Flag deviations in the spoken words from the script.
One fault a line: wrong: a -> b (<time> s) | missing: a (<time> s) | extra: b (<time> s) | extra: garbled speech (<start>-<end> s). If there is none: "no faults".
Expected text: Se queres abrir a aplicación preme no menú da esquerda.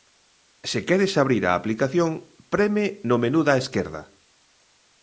no faults